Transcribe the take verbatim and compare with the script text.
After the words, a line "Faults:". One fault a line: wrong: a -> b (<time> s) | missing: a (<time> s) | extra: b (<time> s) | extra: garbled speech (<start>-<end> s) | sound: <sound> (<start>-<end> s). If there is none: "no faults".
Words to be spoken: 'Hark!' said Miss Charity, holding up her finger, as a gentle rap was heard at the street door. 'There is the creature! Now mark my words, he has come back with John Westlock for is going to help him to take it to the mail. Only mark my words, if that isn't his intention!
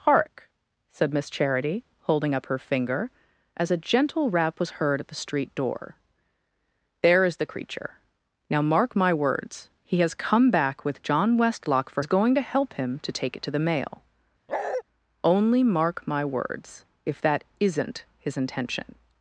'Hark!' said Miss Charity, holding up her finger, as a gentle rap was heard at the street door. 'There is the creature! Now mark my words, he has come back with John Westlock for is going to help him to take it to the mail. Only mark my words, if that isn't his intention!
Faults:
sound: bark (14.5-14.8 s)